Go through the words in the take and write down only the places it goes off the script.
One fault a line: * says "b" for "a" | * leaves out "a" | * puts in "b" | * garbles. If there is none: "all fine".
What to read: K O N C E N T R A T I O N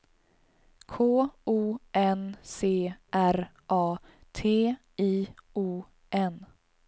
* leaves out "E N T"